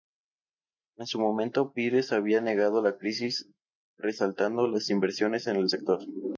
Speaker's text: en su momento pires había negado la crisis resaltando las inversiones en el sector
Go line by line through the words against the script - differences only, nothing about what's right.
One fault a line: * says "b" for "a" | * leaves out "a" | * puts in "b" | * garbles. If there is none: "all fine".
all fine